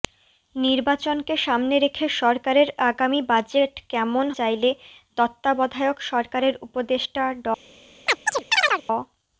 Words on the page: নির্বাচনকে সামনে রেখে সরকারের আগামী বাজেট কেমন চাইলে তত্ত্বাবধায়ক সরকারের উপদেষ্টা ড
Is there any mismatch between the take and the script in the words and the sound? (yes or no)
yes